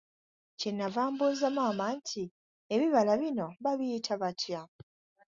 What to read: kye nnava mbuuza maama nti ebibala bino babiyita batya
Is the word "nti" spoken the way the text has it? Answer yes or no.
yes